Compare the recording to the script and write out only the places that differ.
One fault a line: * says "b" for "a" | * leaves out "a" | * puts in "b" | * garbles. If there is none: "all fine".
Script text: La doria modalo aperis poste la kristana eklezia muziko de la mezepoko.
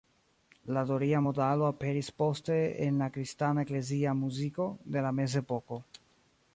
* puts in "en"